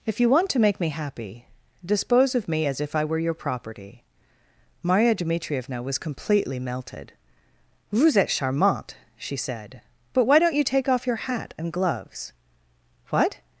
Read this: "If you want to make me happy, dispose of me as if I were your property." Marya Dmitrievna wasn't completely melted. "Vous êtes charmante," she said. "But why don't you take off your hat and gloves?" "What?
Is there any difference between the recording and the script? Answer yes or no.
yes